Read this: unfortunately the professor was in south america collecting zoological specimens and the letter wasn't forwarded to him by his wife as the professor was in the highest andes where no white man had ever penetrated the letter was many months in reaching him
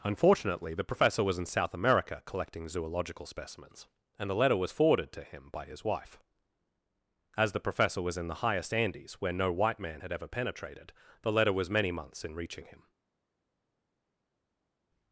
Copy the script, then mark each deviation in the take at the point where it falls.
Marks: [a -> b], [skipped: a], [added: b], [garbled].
unfortunately the professor was in south america collecting zoological specimens and the letter [wasn't -> was] forwarded to him by his wife as the professor was in the highest andes where no white man had ever penetrated the letter was many months in reaching him